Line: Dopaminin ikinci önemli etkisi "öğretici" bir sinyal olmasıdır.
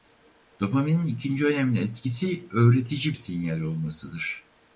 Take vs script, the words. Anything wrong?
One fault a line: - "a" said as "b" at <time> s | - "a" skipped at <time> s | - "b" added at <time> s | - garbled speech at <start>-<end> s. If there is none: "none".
- "bir" skipped at 3.2 s